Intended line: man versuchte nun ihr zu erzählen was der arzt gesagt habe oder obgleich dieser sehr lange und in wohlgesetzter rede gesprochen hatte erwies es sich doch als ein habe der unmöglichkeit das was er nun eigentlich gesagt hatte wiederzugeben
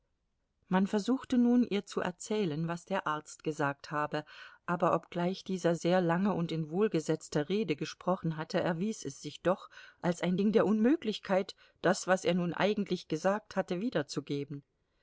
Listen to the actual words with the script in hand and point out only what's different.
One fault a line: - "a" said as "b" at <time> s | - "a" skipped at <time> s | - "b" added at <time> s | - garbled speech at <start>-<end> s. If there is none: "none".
- "oder" said as "aber" at 4.7 s
- "habe" said as "ding" at 10.4 s